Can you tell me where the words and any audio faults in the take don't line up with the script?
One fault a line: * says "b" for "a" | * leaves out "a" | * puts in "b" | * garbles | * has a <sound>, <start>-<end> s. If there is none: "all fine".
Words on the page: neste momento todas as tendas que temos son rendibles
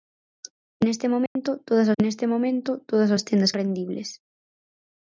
* has a dropout, 1.3-1.4 s
* says "neste momento todas as tendas" for "as tendas que temos son"